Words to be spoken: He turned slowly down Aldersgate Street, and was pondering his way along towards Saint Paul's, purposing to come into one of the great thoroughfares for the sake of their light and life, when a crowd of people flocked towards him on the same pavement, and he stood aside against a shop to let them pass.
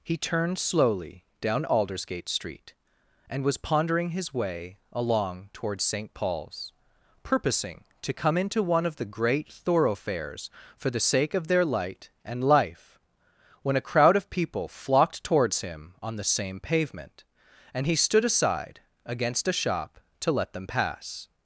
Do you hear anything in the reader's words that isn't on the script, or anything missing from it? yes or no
no